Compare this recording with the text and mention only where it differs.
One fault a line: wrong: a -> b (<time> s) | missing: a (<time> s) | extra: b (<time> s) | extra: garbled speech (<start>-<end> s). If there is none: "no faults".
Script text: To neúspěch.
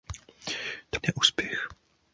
no faults